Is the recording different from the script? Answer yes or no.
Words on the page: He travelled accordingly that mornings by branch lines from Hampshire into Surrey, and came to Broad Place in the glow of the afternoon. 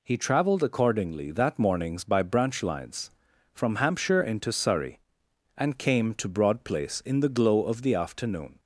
no